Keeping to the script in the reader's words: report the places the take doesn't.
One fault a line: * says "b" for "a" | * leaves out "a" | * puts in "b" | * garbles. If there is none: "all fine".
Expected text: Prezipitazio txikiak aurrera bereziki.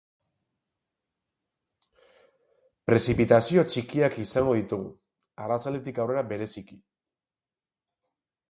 * puts in "izango ditugu arratsaldetik"